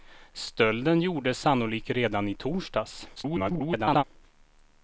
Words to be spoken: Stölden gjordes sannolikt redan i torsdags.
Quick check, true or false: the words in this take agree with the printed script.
false